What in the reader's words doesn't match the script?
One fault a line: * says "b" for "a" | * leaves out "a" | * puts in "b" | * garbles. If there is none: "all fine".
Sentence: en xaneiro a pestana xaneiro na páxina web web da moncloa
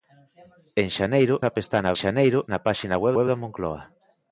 all fine